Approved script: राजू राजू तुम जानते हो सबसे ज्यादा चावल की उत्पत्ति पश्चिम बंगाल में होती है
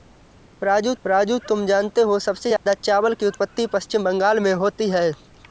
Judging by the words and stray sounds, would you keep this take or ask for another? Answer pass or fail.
fail